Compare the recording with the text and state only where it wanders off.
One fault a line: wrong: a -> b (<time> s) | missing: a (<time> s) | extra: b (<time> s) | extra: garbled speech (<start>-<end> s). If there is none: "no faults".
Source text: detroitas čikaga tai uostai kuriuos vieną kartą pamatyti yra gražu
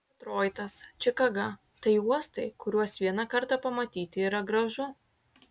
no faults